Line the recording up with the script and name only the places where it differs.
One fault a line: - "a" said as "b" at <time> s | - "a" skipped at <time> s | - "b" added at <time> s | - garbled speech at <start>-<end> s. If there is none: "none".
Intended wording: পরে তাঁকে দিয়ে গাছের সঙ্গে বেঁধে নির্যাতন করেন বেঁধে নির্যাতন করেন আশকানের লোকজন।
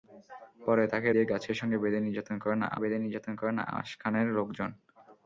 none